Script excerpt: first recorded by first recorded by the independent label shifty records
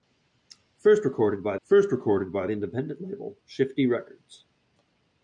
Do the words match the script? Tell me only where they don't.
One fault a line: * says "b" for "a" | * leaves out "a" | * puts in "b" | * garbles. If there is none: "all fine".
all fine